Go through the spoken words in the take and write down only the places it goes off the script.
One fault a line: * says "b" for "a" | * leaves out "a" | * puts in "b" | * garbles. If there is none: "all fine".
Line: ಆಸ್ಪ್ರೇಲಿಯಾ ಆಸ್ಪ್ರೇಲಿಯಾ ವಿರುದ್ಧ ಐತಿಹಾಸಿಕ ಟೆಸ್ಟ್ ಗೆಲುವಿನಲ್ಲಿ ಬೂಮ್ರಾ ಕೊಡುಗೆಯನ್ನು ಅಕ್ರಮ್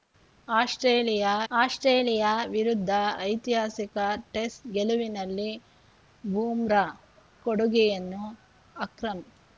all fine